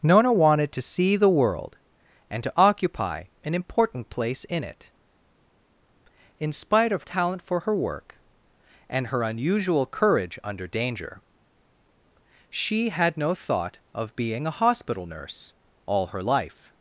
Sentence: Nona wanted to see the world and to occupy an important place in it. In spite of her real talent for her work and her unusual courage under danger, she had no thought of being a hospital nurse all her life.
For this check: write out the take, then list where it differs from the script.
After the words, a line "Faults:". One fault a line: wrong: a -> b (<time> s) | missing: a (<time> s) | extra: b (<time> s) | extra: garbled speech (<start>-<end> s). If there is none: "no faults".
Nona wanted to see the world and to occupy an important place in it. In spite of talent for her work and her unusual courage under danger, she had no thought of being a hospital nurse all her life.
Faults:
missing: her real (7.0 s)